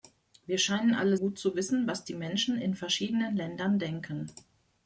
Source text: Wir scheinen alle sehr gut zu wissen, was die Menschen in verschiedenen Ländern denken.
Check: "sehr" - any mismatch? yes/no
yes